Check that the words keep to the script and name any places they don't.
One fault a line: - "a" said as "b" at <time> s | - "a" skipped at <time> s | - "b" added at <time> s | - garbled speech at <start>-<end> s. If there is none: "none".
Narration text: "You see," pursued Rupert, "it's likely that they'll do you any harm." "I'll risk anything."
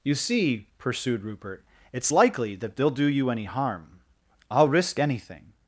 none